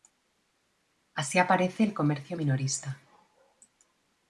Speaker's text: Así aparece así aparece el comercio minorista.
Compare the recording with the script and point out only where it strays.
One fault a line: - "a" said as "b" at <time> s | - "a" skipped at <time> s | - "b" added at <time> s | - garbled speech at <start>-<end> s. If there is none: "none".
- "así aparece" skipped at 1.8 s